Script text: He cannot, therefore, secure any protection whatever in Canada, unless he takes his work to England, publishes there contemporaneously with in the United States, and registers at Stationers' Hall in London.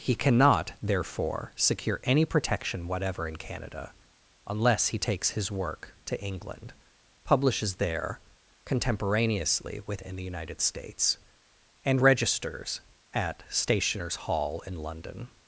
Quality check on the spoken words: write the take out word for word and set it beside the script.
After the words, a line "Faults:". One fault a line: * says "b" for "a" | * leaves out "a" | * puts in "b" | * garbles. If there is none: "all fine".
He cannot, therefore, secure any protection whatever in Canada, unless he takes his work to England, publishes there contemporaneously with in the United States, and registers at Stationers' Hall in London.
Faults:
all fine